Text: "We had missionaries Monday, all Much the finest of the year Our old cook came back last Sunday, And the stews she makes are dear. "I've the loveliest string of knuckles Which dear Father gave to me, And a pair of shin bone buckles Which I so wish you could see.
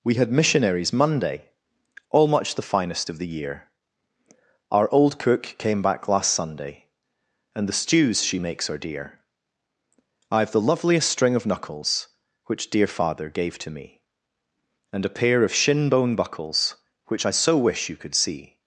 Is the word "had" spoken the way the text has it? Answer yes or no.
yes